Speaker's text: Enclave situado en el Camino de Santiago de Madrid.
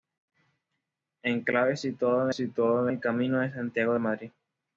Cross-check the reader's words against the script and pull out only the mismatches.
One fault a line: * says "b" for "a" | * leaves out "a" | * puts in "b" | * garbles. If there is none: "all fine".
* puts in "situado"